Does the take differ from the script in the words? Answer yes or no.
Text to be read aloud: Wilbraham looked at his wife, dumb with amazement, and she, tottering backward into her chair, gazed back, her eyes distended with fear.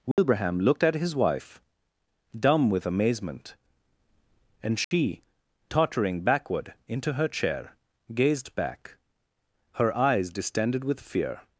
no